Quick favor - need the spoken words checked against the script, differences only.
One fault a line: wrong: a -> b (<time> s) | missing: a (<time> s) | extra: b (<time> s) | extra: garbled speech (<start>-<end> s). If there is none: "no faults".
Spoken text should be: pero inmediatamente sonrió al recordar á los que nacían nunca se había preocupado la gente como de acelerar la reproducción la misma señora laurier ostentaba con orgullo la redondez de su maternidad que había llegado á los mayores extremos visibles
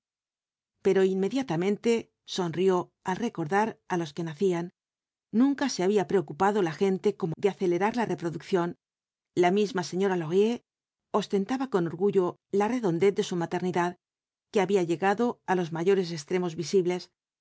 no faults